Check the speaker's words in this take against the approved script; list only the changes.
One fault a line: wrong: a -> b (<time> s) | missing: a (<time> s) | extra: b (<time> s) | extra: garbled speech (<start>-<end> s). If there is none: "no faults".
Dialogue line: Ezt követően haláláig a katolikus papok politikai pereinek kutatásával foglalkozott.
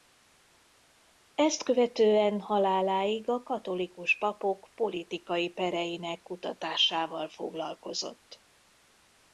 no faults